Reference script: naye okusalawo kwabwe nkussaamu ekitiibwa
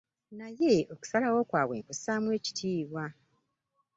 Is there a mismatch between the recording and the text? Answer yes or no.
no